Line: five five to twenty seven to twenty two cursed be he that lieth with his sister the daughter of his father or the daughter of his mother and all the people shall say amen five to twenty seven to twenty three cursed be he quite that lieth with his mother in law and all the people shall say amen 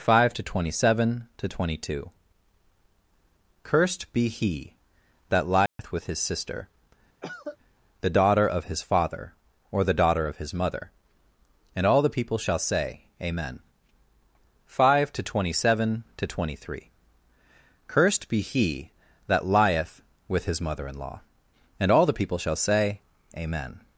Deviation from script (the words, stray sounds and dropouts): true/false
true